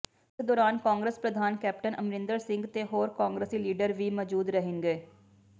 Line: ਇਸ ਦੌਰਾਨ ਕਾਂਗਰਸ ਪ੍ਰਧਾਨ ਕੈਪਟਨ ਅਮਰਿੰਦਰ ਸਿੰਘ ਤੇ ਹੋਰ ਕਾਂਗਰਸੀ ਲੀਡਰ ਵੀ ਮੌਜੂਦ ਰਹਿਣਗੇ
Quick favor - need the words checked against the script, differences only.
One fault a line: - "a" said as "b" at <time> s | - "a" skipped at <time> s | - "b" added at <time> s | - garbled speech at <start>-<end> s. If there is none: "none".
none